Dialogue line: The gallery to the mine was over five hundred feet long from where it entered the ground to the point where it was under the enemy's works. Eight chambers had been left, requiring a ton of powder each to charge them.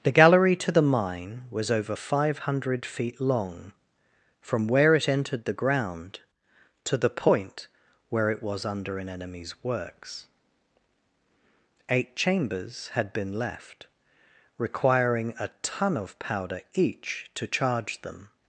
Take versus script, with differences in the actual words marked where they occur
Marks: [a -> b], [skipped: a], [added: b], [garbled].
The gallery to the mine was over five hundred feet long from where it entered the ground to the point where it was under [the -> an] enemy's works. Eight chambers had been left, requiring a ton of powder each to charge them.